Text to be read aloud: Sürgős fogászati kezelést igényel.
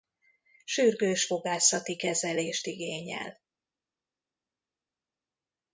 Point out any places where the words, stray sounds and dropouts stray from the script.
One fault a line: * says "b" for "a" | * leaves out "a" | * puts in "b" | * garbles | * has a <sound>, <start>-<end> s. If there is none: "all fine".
all fine